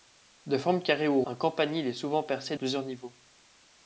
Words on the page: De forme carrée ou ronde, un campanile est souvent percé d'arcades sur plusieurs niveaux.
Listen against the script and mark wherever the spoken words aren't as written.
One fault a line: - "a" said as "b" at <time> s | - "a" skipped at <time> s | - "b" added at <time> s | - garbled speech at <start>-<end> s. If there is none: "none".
- "ronde" skipped at 1.2 s
- "d'arcades sur" skipped at 2.6 s